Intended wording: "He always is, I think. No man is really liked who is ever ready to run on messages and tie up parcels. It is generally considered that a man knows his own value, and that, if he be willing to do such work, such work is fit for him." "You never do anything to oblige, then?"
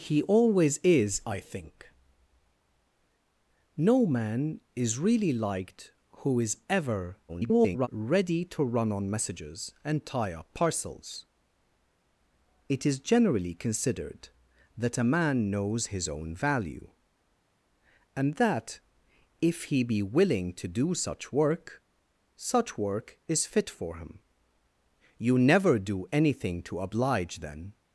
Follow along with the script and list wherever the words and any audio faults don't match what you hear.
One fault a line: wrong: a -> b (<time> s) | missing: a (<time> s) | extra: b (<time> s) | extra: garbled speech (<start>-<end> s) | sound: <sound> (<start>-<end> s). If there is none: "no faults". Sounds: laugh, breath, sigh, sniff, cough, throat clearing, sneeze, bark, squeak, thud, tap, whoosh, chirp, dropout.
extra: garbled speech (7.3-7.9 s)